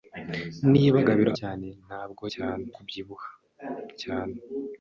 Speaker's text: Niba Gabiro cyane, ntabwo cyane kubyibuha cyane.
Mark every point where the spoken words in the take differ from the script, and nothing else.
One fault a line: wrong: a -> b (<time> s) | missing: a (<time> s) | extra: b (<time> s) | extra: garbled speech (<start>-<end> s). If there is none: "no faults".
no faults